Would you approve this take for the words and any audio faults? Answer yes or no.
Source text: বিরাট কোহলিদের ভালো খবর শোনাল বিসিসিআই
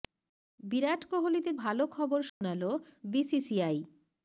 no